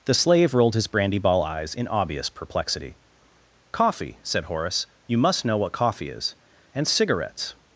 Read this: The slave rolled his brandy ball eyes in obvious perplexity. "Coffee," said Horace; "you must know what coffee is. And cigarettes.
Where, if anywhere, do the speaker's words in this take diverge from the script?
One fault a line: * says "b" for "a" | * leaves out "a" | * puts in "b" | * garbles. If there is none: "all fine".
all fine